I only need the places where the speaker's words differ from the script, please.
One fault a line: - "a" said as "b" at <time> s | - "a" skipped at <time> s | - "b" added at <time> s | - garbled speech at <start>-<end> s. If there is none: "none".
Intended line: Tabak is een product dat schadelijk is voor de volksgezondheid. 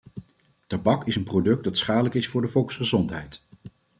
none